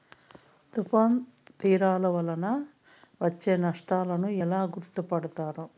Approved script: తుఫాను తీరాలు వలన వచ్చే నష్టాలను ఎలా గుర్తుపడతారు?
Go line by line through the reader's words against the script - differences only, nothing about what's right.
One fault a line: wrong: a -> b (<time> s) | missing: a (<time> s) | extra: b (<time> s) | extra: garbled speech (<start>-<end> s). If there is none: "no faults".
no faults